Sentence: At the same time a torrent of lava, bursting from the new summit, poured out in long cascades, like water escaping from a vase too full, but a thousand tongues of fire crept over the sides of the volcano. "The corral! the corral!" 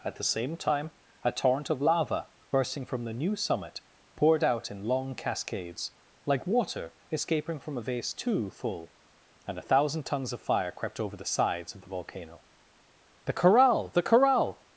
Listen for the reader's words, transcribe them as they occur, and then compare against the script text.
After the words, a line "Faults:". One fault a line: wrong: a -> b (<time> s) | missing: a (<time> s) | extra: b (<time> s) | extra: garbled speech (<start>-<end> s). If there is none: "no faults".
At the same time a torrent of lava, bursting from the new summit, poured out in long cascades, like water escaping from a vase too full, and a thousand tongues of fire crept over the sides of the volcano. "The corral! the corral!"
Faults:
wrong: but -> and (9.5 s)